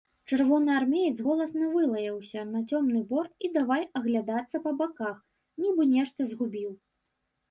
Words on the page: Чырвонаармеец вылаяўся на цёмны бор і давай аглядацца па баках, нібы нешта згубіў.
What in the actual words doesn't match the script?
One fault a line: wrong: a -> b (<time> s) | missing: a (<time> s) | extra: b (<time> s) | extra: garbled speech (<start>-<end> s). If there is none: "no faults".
extra: голасна (1.2 s)